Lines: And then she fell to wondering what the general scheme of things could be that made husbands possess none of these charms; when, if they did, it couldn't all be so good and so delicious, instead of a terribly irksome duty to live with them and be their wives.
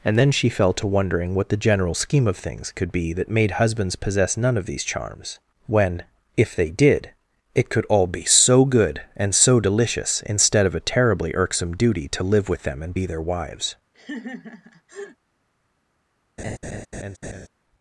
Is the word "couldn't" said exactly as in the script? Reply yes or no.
no